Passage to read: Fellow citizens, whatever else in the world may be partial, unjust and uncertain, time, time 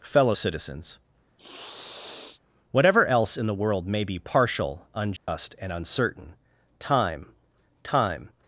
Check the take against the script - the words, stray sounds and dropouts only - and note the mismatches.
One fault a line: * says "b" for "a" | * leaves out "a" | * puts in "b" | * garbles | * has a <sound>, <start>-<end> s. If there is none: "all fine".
* has a sniff, 1.4-2.4 s
* has a dropout, 5.2-5.3 s